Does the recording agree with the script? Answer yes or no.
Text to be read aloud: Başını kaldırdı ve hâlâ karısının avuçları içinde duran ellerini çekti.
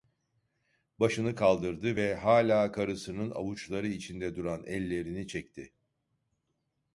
yes